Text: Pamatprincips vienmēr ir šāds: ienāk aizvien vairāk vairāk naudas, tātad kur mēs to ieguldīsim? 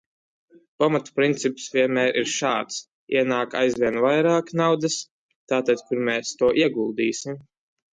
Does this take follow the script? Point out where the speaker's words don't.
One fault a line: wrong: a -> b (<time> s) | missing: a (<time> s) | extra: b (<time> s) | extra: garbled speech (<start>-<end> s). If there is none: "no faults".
missing: vairāk (4.5 s)